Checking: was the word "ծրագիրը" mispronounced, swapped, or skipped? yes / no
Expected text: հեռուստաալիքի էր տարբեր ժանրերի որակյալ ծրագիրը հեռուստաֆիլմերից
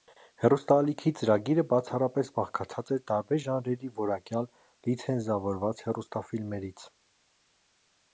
yes